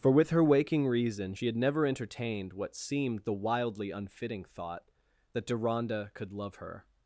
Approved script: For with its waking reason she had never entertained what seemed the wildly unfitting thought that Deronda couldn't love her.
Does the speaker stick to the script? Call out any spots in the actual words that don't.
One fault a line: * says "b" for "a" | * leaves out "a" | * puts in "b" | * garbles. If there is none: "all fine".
* says "her" for "its"
* says "could" for "couldn't"